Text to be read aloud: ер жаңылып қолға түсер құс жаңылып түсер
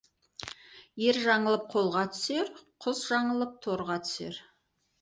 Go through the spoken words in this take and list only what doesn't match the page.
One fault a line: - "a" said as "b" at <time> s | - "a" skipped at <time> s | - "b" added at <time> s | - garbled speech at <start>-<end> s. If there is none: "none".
- "торға" added at 3.7 s